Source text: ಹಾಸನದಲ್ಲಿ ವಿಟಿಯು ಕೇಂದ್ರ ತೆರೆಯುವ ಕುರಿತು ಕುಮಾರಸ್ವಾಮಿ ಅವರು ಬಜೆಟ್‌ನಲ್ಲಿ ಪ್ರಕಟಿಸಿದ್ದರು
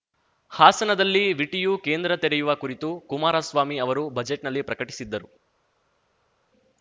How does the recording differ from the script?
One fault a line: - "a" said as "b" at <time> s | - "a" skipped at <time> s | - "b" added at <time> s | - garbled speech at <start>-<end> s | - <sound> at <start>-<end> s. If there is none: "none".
none